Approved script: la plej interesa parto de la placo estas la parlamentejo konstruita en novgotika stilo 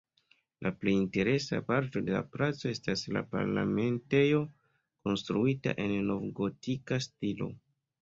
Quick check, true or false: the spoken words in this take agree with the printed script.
true